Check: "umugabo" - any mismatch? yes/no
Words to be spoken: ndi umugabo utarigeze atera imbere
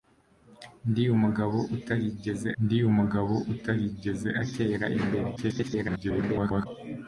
no